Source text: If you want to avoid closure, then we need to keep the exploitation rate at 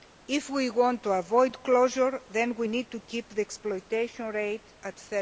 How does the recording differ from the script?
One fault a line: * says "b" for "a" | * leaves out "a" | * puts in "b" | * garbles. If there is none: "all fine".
* says "we" for "you"